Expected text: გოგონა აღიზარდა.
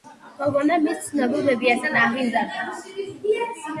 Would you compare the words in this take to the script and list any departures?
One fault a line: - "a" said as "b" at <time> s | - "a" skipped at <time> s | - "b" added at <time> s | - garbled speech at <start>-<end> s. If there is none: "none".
- "მის ცნობილ ბებიასთან" added at 0.8 s